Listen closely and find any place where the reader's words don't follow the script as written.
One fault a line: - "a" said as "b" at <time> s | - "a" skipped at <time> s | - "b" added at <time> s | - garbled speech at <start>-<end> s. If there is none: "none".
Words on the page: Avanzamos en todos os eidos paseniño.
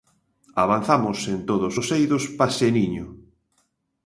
none